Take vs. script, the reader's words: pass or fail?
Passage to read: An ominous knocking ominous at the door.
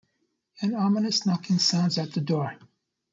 fail